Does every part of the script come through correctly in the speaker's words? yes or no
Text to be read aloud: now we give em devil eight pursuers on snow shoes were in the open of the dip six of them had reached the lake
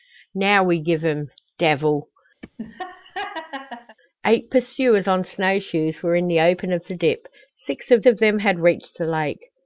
no